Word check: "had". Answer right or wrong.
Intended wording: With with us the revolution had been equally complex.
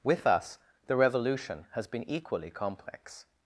wrong